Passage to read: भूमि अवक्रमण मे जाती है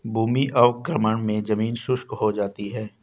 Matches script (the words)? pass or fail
fail